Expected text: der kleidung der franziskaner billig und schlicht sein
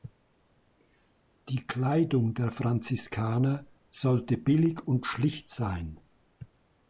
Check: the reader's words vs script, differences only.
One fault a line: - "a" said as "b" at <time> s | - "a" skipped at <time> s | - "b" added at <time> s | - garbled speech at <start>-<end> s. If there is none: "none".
- "der" said as "die" at 1.5 s
- "sollte" added at 3.9 s